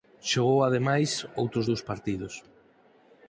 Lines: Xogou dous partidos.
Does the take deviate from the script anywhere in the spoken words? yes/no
yes